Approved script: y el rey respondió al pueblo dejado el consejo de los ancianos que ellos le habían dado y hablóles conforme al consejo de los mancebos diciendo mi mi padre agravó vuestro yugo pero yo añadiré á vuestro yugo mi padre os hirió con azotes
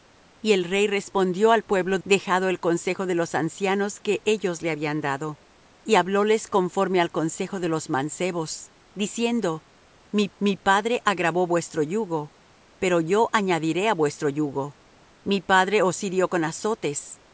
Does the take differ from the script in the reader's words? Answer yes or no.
no